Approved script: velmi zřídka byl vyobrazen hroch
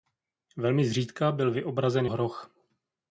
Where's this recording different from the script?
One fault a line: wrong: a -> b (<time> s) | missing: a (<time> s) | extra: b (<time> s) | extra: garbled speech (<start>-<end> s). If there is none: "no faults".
no faults